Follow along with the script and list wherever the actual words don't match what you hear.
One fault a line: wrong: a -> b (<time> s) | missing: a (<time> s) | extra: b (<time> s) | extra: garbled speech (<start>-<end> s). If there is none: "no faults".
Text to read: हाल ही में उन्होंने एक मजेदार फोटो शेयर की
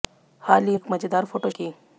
missing: में उन्होंने (0.8 s)
missing: शेयर (1.5 s)